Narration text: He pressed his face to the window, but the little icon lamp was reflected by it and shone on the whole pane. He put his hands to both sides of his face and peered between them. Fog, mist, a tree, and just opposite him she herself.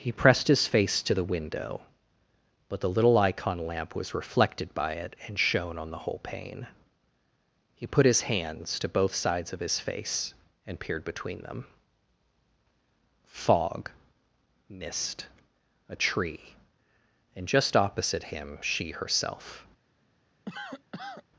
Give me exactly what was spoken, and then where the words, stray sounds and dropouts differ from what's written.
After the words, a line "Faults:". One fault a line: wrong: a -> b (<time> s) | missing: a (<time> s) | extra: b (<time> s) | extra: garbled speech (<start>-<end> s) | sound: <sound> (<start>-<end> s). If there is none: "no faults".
He pressed his face to the window, but the little icon lamp was reflected by it and shone on the whole pane. He put his hands to both sides of his face and peered between them. Fog, mist, a tree, and just opposite him she herself.
Faults:
sound: cough (20.5-21.2 s)